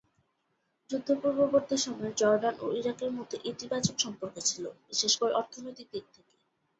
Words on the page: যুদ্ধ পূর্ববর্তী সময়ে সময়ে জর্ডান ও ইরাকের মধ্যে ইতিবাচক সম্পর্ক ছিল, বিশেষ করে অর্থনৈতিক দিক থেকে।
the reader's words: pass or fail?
fail